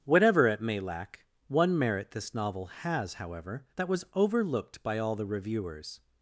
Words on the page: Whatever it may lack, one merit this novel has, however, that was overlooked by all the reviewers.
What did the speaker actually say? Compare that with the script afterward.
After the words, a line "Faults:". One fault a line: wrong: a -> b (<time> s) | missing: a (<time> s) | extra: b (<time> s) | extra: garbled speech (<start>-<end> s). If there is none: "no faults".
Whatever it may lack, one merit this novel has, however, that was overlooked by all the reviewers.
Faults:
no faults